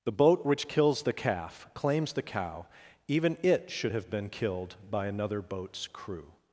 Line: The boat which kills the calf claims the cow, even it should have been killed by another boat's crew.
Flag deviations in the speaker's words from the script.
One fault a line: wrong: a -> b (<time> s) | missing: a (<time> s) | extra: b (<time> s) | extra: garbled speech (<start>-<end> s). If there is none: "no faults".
no faults